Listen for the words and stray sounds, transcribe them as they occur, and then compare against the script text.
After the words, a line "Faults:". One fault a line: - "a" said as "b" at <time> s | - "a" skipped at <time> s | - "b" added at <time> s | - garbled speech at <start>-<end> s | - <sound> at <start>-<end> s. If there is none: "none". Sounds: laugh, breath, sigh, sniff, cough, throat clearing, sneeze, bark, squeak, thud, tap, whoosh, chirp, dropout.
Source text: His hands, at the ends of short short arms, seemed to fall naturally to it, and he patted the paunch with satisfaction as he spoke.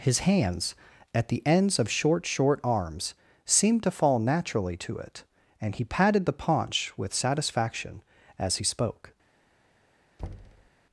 His hands, at the ends of short short arms, seemed to fall naturally to it, and he patted the paunch with satisfaction as he spoke.
Faults:
- thud at 10.2-10.7 s